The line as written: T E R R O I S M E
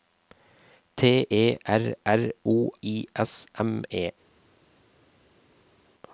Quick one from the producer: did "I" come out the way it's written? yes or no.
yes